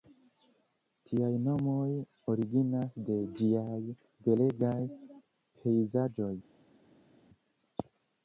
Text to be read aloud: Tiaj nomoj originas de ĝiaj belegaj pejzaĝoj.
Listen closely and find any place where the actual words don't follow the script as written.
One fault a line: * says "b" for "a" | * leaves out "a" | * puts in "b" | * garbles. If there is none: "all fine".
all fine